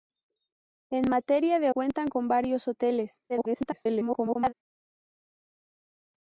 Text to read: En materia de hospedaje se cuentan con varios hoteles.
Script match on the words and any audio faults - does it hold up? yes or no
no